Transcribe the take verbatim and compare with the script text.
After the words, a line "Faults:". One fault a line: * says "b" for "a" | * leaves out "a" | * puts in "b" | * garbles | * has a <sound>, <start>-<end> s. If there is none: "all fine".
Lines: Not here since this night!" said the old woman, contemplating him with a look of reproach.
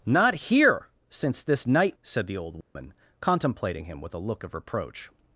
Not here since this night!" said the old woman, contemplating him with a look of reproach.
Faults:
* has a dropout, 2.6-2.8 s